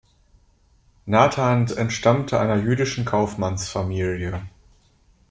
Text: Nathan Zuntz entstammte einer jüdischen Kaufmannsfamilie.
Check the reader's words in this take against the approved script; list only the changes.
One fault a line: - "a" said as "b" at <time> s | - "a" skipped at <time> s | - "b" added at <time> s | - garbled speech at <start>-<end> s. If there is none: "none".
- "Zuntz" skipped at 1.7 s